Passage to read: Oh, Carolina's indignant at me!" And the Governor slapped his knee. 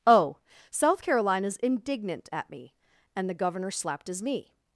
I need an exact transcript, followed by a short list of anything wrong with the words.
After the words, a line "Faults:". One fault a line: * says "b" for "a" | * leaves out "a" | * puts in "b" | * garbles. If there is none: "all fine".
Oh, South Carolina's indignant at me!" And the Governor slapped his knee.
Faults:
* puts in "South"